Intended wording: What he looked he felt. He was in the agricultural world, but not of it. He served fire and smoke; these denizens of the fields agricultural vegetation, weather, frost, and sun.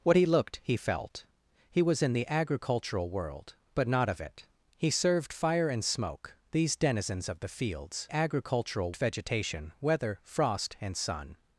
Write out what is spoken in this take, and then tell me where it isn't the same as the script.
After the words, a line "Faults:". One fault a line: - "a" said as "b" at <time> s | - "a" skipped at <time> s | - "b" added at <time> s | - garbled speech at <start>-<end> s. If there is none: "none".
What he looked he felt. He was in the agricultural world, but not of it. He served fire and smoke; these denizens of the fields agricultural vegetation, weather, frost, and sun.
Faults:
none